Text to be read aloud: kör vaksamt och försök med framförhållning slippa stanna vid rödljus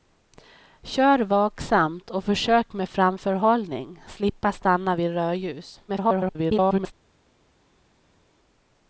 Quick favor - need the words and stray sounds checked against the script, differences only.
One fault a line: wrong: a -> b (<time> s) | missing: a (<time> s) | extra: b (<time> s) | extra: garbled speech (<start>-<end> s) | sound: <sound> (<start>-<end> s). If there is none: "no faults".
extra: garbled speech (5.9-6.9 s)